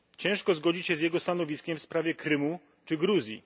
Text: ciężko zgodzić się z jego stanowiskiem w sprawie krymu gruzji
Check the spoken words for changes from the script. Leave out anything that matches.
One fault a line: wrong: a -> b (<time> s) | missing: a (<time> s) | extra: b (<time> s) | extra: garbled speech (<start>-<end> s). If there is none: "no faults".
extra: czy (2.9 s)